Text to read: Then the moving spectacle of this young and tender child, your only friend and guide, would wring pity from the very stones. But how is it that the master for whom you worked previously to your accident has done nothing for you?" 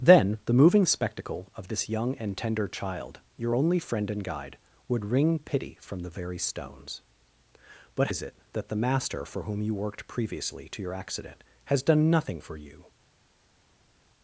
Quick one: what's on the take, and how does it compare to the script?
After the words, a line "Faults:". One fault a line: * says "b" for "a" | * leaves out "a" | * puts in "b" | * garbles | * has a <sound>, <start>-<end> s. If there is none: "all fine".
Then the moving spectacle of this young and tender child, your only friend and guide, would wring pity from the very stones. But is it that the master for whom you worked previously to your accident has done nothing for you?"
Faults:
* leaves out "how"